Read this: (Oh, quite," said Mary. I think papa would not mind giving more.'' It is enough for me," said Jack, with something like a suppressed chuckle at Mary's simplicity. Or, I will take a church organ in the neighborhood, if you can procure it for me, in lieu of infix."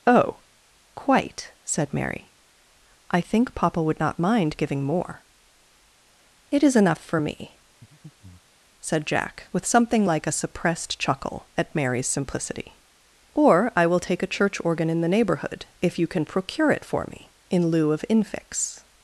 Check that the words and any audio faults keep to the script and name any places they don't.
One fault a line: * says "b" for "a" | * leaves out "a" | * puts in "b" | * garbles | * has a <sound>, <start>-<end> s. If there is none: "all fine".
* has a breath, 7.8-8.6 s